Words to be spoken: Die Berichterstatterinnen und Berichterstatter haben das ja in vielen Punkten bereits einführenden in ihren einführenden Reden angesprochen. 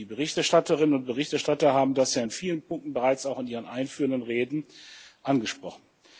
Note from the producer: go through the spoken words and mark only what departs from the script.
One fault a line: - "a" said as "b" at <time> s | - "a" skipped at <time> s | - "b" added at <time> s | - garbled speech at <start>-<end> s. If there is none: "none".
- "einführenden" said as "auch" at 3.2 s